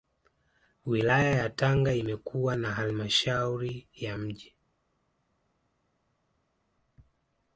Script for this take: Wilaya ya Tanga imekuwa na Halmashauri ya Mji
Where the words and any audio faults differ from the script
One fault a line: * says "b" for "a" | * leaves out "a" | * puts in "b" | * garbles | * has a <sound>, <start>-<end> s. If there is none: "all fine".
all fine